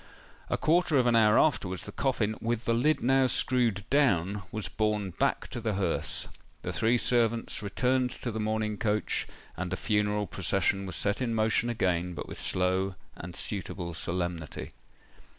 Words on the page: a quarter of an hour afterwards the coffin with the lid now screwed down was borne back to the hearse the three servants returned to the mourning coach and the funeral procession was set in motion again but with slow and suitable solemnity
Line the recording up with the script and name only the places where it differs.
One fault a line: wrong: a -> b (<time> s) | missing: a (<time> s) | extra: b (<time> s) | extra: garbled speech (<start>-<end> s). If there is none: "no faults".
no faults